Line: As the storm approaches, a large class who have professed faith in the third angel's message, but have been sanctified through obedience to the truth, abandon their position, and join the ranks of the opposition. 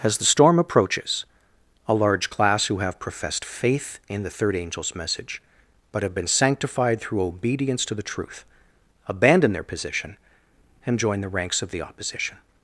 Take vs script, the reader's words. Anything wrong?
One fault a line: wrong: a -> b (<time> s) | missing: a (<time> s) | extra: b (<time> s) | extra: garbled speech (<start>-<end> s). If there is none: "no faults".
no faults